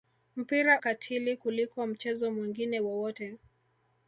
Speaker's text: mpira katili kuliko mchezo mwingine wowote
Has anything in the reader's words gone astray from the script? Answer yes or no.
no